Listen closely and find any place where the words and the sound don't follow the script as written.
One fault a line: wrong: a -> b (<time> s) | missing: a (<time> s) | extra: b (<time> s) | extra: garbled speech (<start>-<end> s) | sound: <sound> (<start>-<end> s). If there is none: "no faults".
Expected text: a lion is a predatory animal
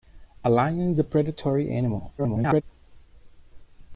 extra: garbled speech (2.2-2.6 s)